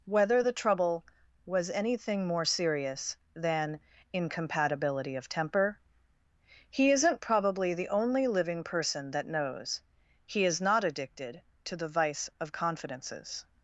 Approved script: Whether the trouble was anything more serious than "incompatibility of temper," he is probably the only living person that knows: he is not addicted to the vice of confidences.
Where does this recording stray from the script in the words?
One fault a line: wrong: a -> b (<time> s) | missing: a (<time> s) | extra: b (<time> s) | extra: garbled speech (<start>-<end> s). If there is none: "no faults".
wrong: is -> isn't (6.9 s)